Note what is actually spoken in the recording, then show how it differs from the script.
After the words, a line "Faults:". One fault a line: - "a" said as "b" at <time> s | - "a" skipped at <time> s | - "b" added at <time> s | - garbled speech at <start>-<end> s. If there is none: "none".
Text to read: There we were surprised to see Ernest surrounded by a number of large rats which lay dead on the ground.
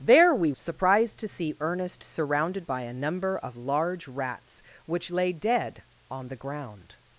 There we surprised to see Ernest surrounded by a number of large rats which lay dead on the ground.
Faults:
- "were" skipped at 0.5 s